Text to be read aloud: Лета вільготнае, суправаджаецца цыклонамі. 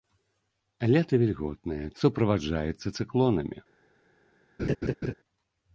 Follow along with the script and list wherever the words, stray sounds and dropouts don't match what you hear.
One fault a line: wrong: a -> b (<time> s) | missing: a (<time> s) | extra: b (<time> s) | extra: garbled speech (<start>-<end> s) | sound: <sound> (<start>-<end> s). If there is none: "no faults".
sound: laugh (4.6-5.1 s)